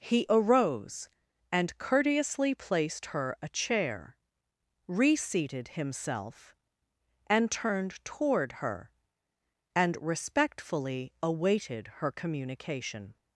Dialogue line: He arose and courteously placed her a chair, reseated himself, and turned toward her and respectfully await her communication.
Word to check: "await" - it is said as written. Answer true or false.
false